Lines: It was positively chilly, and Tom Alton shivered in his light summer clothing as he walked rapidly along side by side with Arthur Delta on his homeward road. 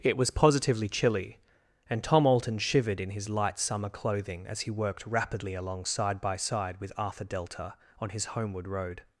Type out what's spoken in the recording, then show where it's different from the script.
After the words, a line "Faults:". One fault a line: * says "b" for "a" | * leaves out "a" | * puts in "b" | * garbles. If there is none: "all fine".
It was positively chilly, and Tom Alton shivered in his light summer clothing as he worked rapidly along side by side with Arthur Delta on his homeward road.
Faults:
* says "worked" for "walked"